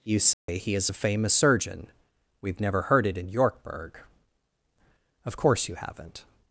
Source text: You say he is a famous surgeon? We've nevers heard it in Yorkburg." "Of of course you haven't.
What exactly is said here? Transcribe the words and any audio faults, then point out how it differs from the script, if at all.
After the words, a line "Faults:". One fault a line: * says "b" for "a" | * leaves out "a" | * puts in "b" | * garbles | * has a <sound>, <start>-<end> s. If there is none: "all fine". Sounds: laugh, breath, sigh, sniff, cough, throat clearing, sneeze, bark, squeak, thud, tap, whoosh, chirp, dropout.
You say he is a famous surgeon? We've never heard it in Yorkburg." "Of course you haven't.
Faults:
* has a dropout, 0.3-0.5 s
* says "never" for "nevers"
* leaves out "of"